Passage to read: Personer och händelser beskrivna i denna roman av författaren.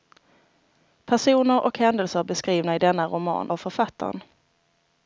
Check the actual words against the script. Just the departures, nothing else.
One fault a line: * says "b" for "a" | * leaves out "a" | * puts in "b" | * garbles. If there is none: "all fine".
all fine